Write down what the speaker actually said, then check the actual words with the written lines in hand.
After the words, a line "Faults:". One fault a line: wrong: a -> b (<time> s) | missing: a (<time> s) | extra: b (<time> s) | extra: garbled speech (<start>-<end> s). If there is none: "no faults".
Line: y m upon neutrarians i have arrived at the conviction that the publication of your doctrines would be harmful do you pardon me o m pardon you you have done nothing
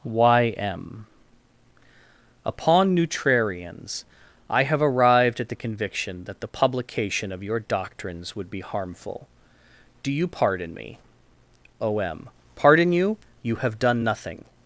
y m upon neutrarians i have arrived at the conviction that the publication of your doctrines would be harmful do you pardon me o m pardon you you have done nothing
Faults:
no faults